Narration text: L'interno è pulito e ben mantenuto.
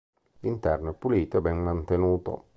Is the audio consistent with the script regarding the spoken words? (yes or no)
yes